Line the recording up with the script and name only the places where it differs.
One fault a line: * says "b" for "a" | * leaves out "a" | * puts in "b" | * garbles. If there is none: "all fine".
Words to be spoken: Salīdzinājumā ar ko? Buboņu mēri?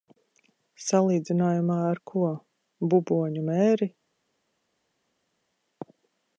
all fine